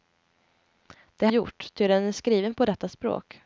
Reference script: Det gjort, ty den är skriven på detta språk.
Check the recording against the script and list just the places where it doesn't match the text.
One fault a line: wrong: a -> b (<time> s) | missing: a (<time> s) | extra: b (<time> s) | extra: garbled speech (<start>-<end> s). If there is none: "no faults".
no faults